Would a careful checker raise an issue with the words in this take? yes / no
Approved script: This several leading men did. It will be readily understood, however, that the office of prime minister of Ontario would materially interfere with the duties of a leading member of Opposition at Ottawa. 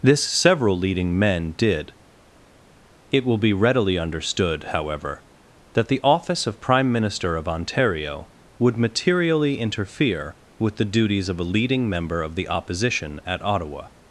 yes